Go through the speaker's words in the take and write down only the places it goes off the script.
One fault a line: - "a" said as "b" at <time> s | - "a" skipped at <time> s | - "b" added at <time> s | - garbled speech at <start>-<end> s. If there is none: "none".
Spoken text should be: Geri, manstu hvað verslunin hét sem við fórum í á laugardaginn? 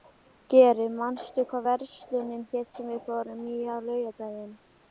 none